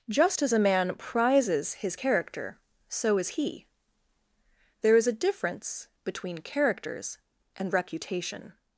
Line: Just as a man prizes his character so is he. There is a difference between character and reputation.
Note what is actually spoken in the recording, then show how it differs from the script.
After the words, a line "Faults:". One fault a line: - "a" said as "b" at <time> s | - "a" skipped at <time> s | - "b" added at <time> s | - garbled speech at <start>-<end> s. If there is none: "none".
Just as a man prizes his character so is he. There is a difference between characters and reputation.
Faults:
- "character" said as "characters" at 6.4 s